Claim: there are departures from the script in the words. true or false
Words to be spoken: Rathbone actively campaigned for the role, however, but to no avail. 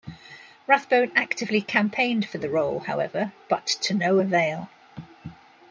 false